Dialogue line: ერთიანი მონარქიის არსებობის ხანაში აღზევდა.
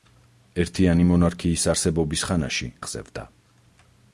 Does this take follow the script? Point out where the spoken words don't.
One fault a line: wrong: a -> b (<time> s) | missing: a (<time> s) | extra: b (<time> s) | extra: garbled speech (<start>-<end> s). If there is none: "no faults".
no faults